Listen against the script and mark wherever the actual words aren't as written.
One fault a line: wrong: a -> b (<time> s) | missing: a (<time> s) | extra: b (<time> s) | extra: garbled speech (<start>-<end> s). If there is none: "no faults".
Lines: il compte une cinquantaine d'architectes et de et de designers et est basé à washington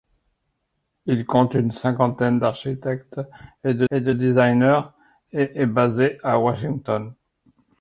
no faults